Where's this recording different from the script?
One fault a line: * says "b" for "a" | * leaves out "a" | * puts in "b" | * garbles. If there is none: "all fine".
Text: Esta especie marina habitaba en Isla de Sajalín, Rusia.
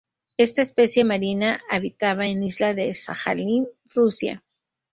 all fine